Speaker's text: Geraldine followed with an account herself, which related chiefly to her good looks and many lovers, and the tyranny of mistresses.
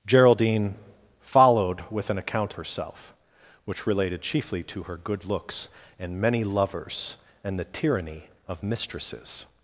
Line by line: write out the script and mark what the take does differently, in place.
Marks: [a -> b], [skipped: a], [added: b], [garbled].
Geraldine followed with an account herself, which related chiefly to her good looks and many lovers, and the tyranny of mistresses.